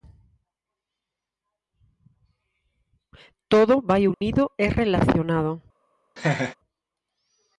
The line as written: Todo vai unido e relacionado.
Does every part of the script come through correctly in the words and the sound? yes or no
no